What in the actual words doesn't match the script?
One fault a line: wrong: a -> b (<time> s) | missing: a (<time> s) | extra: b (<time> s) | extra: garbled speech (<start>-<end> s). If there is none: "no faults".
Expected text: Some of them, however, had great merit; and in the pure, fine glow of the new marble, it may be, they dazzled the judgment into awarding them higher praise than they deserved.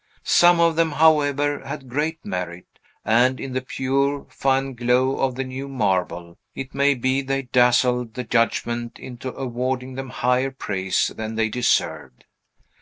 no faults